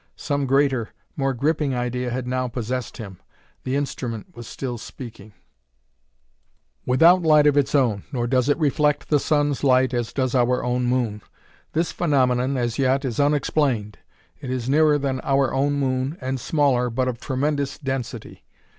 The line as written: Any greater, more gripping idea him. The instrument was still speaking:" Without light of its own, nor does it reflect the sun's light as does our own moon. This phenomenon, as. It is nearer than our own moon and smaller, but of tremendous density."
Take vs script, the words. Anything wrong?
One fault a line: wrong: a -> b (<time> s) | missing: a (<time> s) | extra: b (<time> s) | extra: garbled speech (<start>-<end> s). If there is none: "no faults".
wrong: Any -> Some (0.1 s)
extra: had now possessed (2.1 s)
extra: yet is unexplained (12.8 s)